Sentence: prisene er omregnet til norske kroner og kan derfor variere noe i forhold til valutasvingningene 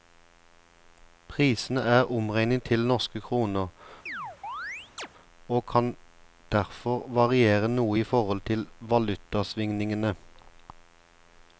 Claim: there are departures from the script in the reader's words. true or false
false